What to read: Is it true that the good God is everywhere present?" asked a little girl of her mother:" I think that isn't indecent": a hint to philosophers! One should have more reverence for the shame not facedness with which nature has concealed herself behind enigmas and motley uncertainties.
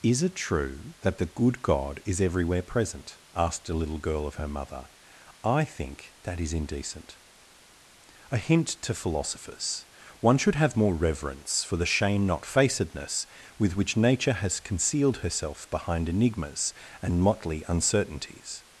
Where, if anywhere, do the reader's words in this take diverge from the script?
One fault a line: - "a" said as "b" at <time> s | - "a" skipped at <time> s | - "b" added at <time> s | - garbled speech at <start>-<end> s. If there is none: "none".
- "isn't" said as "is" at 6.4 s